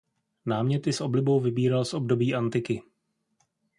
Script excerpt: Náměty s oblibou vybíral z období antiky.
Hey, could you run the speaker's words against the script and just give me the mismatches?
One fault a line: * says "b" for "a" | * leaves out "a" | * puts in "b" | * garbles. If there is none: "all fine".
all fine